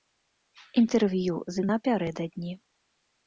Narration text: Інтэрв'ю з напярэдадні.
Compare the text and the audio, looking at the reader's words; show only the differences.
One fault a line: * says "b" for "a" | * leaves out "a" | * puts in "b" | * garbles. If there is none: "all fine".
all fine